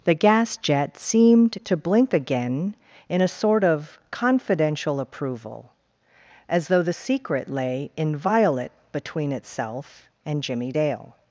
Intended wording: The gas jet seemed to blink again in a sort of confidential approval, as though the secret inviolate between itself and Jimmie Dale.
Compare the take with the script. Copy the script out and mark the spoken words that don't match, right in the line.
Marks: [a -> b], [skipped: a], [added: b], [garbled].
The gas jet seemed to blink again in a sort of confidential approval, as though the secret [added: lay] inviolate between itself and Jimmie Dale.